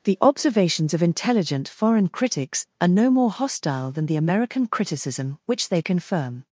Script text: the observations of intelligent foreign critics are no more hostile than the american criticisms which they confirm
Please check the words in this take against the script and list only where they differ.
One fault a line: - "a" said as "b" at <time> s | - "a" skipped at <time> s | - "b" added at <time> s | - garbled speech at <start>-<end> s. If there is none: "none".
- "criticisms" said as "criticism" at 4.7 s